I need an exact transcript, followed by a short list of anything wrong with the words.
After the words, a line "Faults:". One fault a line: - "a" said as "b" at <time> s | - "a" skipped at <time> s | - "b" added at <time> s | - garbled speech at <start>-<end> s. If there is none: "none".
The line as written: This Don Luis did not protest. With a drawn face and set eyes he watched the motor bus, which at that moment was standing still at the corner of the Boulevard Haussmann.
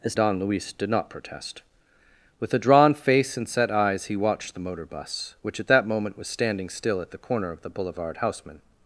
This Don Luis did not protest. With a drawn face and set eyes he watched the motor bus, which at that moment was standing still at the corner of the Boulevard Haussmann.
Faults:
none